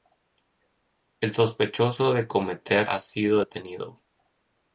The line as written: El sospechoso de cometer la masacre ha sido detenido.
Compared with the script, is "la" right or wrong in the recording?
wrong